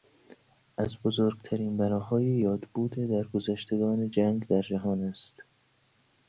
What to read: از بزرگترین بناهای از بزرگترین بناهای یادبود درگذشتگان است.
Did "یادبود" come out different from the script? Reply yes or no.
yes